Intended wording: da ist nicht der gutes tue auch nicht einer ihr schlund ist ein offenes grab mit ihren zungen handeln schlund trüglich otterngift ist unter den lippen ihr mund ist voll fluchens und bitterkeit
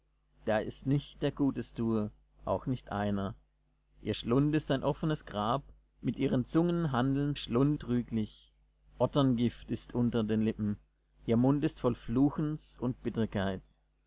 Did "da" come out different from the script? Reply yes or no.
no